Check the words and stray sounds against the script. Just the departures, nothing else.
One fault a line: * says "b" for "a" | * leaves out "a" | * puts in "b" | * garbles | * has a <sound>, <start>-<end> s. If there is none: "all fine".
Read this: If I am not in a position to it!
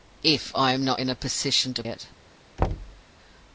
* has a thud, 2.6-3.0 s